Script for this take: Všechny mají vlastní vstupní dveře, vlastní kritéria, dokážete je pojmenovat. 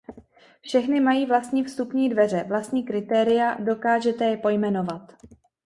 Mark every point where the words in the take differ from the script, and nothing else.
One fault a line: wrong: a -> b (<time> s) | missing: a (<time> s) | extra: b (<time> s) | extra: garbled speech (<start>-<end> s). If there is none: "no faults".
no faults